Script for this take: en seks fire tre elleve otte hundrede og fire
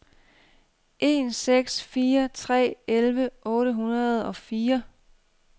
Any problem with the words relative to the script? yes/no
no